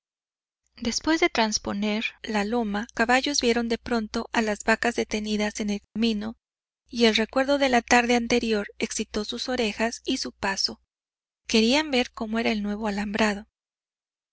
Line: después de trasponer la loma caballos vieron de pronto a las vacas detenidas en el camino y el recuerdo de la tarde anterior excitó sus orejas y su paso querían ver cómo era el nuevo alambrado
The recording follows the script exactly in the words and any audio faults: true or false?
false